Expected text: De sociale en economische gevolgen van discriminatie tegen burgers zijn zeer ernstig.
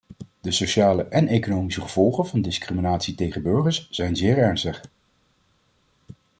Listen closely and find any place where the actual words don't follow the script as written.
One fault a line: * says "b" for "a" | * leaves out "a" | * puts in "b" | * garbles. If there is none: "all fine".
all fine